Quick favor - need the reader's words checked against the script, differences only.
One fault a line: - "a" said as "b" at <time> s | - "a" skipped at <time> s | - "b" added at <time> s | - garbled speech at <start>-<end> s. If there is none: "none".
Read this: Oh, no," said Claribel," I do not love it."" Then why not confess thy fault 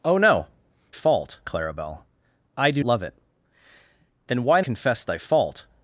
- "said" said as "fault" at 0.9 s
- "not" skipped at 2.8 s
- "not" skipped at 4.6 s